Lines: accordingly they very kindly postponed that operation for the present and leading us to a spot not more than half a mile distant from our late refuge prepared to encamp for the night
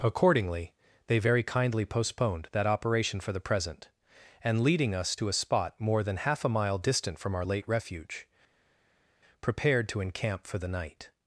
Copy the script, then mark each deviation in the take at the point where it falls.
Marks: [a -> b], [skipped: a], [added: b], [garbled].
accordingly they very kindly postponed that operation for the present and leading us to a spot [skipped: not] more than half a mile distant from our late refuge prepared to encamp for the night